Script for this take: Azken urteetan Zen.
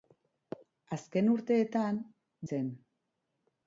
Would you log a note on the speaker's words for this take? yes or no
no